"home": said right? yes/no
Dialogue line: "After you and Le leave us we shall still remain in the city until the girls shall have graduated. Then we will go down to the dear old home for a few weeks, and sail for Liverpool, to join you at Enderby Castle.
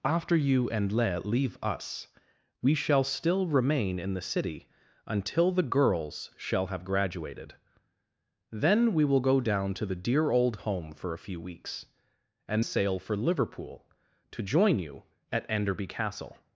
yes